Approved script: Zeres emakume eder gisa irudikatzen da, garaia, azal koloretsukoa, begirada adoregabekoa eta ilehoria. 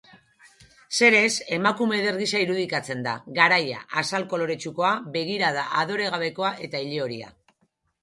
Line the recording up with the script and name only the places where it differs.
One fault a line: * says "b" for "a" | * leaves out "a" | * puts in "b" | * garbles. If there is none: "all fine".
all fine